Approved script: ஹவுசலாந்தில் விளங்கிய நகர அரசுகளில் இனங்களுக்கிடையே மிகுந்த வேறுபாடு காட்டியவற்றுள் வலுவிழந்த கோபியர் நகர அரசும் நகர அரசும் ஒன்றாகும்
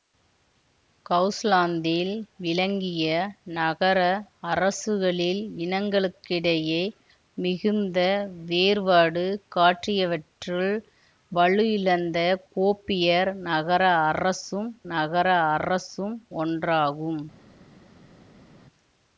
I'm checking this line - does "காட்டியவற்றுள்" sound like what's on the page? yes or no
yes